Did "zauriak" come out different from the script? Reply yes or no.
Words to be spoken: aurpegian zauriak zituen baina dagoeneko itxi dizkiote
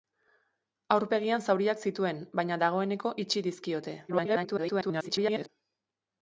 no